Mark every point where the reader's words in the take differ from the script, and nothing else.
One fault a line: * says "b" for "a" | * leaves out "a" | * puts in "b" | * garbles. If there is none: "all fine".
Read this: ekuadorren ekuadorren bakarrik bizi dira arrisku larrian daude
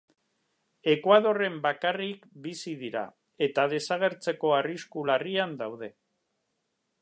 * leaves out "ekuadorren"
* puts in "eta desagertzeko"